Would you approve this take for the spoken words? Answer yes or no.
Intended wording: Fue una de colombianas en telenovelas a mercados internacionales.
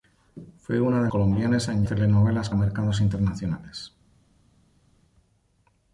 yes